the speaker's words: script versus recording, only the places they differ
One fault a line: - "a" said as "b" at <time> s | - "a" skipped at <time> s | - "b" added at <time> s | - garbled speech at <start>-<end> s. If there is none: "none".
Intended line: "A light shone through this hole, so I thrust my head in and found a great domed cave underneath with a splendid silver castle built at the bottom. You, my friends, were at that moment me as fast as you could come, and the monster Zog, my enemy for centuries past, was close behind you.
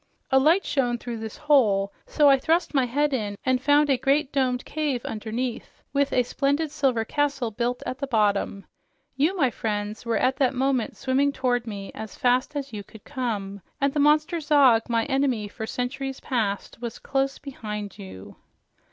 - "swimming toward" added at 11.0 s